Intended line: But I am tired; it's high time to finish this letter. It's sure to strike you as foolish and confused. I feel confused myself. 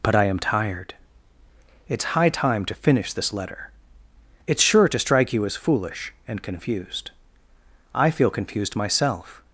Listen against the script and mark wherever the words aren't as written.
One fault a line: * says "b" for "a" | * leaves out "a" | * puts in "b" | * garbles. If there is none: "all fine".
all fine